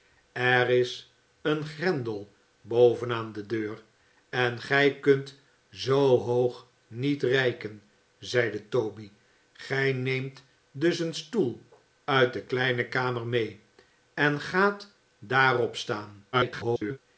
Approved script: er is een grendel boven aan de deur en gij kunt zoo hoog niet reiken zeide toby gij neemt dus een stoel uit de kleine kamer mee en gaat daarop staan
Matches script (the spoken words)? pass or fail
fail